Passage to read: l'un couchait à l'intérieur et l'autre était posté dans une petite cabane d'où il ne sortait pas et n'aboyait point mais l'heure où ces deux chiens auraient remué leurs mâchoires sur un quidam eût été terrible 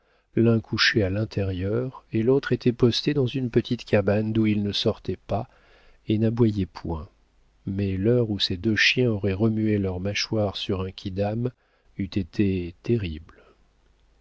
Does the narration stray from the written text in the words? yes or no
no